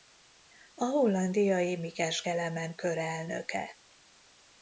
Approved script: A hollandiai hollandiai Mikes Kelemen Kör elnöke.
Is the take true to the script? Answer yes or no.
no